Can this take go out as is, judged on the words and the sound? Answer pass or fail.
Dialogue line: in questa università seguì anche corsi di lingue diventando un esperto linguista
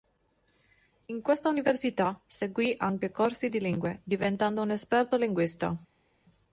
pass